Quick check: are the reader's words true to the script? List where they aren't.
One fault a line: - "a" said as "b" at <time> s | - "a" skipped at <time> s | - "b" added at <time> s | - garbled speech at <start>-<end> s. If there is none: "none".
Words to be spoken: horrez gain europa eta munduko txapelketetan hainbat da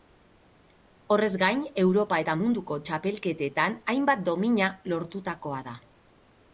- "domina lortutakoa" added at 4.3 s